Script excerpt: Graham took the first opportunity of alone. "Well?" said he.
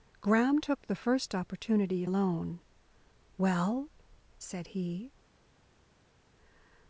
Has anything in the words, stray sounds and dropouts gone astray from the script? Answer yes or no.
no